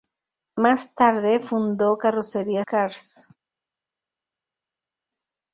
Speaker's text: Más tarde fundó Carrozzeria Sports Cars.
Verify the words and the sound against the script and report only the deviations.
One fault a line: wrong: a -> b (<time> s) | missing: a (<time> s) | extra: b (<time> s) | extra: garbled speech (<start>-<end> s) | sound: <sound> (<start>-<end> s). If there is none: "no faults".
missing: Sports (2.6 s)